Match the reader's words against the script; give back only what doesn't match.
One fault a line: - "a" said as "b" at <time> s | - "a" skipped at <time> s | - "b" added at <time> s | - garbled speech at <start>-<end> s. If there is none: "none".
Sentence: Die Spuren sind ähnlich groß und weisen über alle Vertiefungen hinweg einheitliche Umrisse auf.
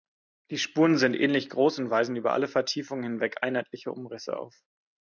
none